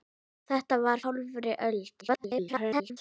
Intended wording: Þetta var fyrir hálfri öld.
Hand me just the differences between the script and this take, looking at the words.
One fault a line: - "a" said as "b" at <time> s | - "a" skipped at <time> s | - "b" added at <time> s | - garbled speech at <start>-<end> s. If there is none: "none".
- "fyrir" skipped at 1.0 s
- garbled speech at 2.0-3.0 s